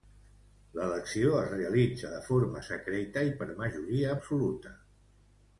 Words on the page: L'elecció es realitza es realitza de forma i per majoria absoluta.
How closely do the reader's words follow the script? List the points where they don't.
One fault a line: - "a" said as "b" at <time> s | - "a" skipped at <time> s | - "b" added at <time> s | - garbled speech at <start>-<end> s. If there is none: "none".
- "es realitza" skipped at 2.1 s
- "secreta" added at 2.7 s